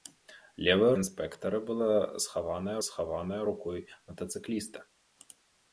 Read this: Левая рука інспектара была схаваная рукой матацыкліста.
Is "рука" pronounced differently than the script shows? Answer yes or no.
yes